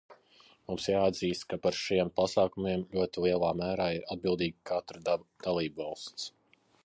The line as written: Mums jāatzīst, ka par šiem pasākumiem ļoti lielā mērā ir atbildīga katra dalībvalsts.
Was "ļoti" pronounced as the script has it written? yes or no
yes